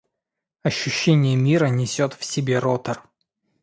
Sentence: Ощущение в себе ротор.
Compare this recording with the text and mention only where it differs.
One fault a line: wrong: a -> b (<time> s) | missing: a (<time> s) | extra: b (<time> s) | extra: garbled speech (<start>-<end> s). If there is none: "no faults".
extra: мира несет (1.4 s)